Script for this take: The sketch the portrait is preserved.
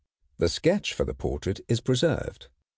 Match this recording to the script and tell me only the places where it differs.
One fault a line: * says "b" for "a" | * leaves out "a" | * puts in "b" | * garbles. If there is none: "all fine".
* puts in "for"